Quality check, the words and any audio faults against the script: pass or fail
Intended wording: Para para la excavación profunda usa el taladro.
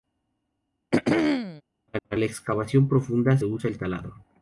fail